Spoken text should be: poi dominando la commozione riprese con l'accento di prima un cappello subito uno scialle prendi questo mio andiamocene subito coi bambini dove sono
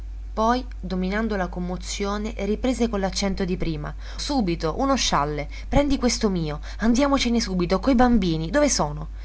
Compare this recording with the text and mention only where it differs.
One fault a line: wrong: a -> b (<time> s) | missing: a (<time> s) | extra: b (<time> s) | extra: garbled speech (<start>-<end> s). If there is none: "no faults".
missing: un cappello (3.9 s)